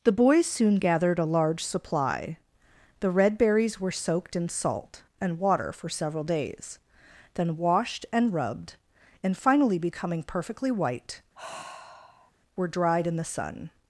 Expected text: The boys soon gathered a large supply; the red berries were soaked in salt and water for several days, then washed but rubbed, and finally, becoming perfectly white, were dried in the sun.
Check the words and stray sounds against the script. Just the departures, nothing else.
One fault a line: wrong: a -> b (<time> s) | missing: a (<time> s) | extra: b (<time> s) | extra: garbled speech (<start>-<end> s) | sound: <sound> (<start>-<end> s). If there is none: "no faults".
wrong: but -> and (8.1 s)
sound: sigh (11.3-12.3 s)